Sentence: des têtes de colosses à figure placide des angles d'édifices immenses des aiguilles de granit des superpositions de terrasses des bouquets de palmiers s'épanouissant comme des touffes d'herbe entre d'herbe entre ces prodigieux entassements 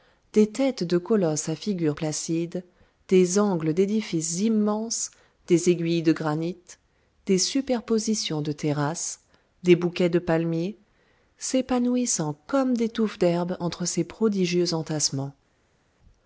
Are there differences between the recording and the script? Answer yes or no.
yes